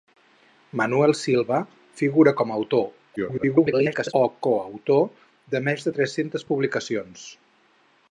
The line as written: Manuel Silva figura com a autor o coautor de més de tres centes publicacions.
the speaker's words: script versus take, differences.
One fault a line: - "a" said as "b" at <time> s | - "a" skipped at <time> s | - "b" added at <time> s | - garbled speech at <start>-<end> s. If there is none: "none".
- garbled speech at 3.2-4.1 s